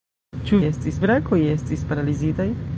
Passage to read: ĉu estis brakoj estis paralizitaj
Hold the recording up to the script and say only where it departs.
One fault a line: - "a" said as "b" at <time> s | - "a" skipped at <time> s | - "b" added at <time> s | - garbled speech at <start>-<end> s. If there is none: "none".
none